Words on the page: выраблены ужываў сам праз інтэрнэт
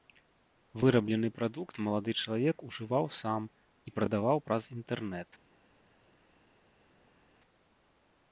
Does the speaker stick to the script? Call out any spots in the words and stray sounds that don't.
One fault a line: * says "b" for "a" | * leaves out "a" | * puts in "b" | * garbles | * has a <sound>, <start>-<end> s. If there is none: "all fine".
* puts in "прадукт малады чалавек"
* puts in "і прадаваў"